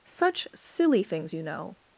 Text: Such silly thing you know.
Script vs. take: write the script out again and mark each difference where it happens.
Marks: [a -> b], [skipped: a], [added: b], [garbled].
Such silly [thing -> things] you know.